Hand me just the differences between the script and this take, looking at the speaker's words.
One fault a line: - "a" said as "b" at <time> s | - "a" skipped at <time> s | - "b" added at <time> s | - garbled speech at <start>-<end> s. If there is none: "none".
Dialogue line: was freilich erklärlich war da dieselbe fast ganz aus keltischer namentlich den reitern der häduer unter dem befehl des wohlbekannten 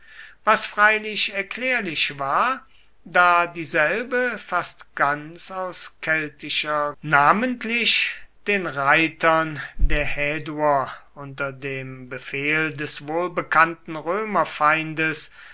none